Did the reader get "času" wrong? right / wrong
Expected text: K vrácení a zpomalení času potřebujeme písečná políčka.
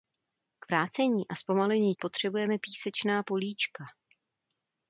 wrong